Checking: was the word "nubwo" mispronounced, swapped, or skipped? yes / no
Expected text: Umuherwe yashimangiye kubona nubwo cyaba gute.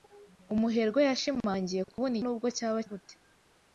no